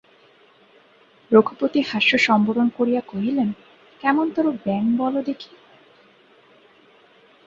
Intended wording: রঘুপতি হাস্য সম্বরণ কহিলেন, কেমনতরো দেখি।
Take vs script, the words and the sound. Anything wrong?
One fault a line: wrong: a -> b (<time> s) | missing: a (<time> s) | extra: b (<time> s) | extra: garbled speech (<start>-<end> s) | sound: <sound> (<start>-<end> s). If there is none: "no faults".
extra: করিয়া (2.8 s)
extra: ব্যাঙ বলো (4.6 s)